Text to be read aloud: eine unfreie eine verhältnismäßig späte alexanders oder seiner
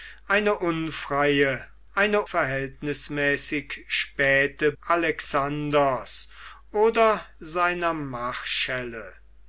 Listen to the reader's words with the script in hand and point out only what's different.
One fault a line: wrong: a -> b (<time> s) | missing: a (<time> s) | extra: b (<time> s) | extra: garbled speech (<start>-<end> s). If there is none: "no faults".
no faults